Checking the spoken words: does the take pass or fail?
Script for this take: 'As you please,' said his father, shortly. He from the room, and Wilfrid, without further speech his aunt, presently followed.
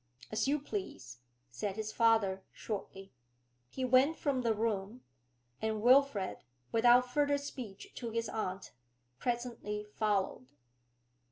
fail